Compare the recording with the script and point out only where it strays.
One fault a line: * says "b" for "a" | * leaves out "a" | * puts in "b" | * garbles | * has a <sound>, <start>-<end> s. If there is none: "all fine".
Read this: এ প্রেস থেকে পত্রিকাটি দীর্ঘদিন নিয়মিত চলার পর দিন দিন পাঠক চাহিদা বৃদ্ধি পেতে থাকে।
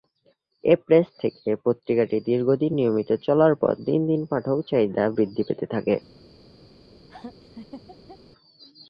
* has a laugh, 7.1-8.2 s